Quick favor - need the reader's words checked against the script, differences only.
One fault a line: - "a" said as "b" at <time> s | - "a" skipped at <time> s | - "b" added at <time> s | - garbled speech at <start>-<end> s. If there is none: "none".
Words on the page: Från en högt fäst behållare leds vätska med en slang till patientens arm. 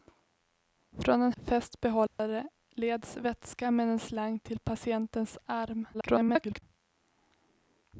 - "högt" skipped at 1.3 s
- garbled speech at 5.9-6.6 s